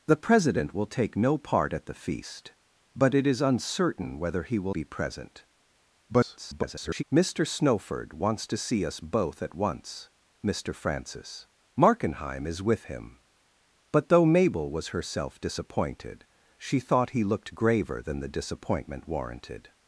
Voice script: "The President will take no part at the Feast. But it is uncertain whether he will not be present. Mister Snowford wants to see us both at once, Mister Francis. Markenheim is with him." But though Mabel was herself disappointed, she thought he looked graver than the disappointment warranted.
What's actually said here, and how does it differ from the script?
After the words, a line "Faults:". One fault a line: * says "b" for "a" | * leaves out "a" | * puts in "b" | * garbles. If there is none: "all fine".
"The President will take no part at the Feast. But it is uncertain whether he will be present. [garbled] Mister Snowford wants to see us both at once, Mister Francis. Markenheim is with him." But though Mabel was herself disappointed, she thought he looked graver than the disappointment warranted.
Faults:
* leaves out "not"
* garbles